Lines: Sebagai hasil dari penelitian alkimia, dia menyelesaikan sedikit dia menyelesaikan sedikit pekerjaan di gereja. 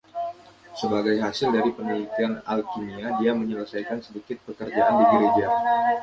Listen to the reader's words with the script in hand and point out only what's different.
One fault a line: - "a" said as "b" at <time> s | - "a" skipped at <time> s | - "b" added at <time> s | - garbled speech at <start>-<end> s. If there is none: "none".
- "dia menyelesaikan sedikit" skipped at 4.4 s